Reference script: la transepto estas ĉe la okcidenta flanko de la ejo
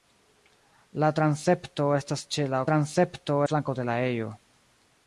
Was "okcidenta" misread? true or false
true